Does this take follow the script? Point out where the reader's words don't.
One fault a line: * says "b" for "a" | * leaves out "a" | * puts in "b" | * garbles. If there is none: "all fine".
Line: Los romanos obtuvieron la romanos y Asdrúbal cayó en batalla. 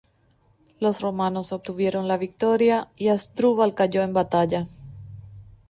* says "victoria" for "romanos"